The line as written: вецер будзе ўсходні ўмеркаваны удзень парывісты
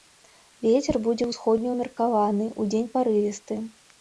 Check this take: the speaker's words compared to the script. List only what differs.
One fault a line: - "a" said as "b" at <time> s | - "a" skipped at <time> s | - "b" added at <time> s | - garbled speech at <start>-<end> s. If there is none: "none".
none